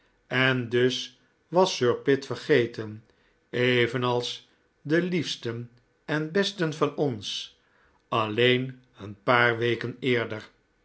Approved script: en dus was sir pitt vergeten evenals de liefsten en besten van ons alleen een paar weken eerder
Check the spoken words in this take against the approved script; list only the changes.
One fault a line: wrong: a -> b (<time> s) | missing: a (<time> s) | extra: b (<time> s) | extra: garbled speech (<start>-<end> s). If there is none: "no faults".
no faults